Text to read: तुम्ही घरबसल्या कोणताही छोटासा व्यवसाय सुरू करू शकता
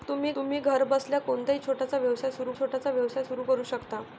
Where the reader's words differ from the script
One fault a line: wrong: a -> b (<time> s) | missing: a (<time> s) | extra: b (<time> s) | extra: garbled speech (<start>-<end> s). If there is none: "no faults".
extra: तुम्ही (0.3 s)
extra: छोटासा व्यवसाय सुरू (2.6 s)